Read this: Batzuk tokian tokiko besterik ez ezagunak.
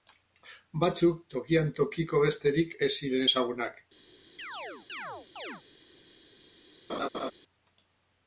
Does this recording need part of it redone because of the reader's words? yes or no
yes